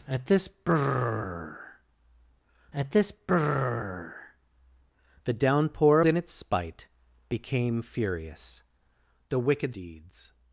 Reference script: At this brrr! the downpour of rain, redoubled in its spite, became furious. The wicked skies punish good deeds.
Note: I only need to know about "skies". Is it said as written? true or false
false